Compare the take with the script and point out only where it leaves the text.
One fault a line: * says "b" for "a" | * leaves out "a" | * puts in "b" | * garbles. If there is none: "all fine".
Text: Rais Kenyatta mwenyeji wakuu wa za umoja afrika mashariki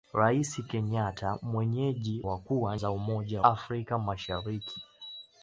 all fine